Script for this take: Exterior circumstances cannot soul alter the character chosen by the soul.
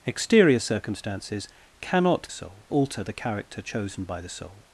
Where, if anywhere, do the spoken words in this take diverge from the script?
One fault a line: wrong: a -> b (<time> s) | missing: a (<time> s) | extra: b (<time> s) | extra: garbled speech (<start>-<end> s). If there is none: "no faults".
no faults